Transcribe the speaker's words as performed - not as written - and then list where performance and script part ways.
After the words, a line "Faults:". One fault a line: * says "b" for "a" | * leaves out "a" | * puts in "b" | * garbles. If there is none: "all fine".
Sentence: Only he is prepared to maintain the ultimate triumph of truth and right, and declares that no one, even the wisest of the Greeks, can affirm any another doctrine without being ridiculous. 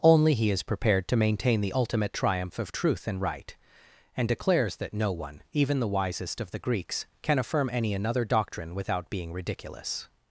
Only he is prepared to maintain the ultimate triumph of truth and right, and declares that no one, even the wisest of the Greeks, can affirm any another doctrine without being ridiculous.
Faults:
all fine